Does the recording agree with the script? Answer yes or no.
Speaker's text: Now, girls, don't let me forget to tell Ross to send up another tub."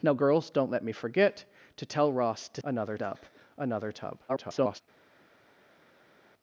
no